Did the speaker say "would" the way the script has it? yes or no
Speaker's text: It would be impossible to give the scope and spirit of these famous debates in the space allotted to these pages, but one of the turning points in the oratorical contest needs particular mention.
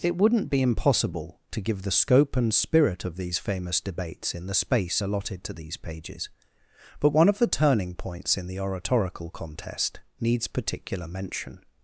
no